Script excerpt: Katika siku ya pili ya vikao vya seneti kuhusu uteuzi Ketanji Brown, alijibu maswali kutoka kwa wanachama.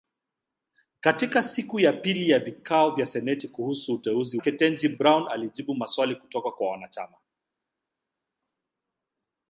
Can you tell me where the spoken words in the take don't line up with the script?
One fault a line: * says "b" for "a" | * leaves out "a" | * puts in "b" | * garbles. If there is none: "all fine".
all fine